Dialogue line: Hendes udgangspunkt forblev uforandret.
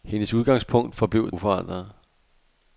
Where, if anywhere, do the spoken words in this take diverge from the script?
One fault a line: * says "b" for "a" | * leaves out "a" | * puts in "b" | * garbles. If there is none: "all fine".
all fine